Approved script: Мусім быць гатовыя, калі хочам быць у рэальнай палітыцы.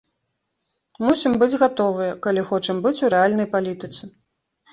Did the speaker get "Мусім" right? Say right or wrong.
right